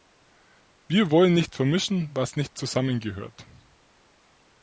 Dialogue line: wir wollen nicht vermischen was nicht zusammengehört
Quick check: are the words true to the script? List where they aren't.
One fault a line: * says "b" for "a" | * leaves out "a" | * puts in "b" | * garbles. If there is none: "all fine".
all fine